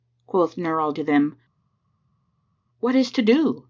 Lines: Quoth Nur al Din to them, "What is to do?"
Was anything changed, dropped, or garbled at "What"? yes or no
no